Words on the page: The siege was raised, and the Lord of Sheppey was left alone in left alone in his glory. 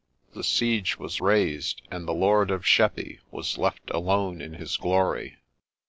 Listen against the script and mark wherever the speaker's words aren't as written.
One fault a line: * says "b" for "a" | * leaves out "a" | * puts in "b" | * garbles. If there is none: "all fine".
* leaves out "left alone in"